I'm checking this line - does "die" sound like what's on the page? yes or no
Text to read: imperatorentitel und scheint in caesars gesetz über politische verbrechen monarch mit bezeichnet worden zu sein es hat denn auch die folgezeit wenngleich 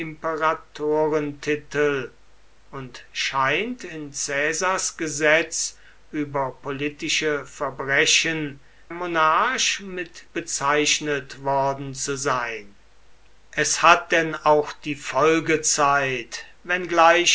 yes